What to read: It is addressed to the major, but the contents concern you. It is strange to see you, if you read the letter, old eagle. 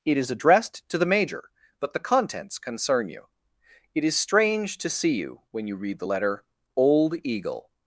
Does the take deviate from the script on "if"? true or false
true